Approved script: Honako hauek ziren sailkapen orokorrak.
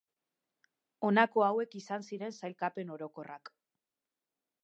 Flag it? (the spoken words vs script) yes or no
yes